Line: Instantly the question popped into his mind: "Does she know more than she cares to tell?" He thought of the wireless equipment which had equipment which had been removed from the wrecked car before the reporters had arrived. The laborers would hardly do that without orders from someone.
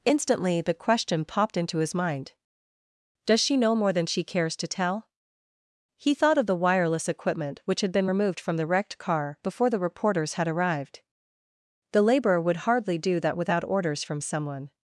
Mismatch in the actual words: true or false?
true